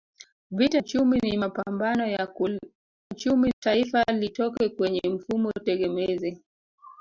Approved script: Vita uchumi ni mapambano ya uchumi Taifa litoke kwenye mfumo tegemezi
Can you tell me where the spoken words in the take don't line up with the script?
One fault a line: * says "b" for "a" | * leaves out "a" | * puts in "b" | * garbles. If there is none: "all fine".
all fine